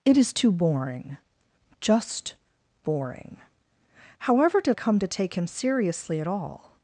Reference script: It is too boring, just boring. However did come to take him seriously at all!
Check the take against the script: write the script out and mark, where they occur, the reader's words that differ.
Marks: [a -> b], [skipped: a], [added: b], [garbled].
It is too boring, just boring. However did come to take him seriously at all!